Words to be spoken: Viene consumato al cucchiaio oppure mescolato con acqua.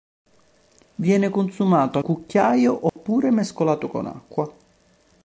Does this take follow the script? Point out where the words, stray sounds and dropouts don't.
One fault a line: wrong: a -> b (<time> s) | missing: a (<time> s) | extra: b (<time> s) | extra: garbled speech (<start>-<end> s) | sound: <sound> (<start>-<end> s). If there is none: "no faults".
missing: al (2.0 s)
sound: dropout (2.9-3.0 s)